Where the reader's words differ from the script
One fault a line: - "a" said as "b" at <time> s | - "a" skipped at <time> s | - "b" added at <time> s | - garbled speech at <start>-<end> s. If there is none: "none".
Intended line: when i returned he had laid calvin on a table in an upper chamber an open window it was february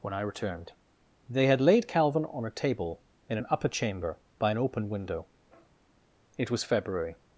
- "he" said as "they" at 1.3 s
- "by" added at 4.4 s